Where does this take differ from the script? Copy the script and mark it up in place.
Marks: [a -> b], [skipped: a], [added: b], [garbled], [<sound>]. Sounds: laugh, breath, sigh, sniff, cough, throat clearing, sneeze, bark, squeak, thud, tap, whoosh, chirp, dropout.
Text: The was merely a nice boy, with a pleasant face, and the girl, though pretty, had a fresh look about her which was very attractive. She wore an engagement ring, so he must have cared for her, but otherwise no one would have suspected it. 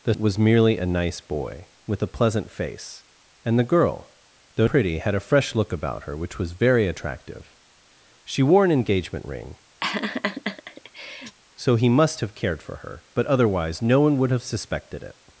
The was merely a nice boy, with a pleasant face, and the girl, though pretty, had a fresh look about her which was very attractive. She wore an engagement ring, [laugh] so he must have cared for her, but otherwise no one would have suspected it.